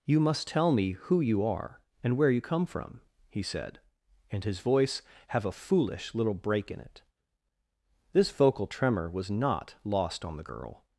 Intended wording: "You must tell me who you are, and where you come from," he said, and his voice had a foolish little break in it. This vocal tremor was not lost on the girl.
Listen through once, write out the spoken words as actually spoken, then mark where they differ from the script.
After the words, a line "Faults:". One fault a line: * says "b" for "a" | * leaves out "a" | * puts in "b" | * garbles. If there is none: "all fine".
"You must tell me who you are, and where you come from," he said, and his voice have a foolish little break in it. This vocal tremor was not lost on the girl.
Faults:
* says "have" for "had"